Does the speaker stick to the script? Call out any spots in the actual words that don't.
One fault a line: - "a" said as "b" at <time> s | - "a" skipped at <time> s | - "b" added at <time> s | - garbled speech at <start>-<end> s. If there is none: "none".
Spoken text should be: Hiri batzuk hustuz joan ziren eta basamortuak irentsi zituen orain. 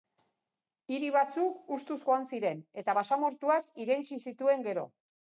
- "orain" said as "gero" at 4.7 s